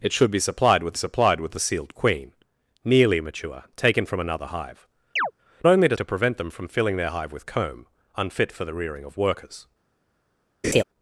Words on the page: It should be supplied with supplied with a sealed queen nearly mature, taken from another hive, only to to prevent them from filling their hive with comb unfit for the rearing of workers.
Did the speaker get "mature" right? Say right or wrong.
right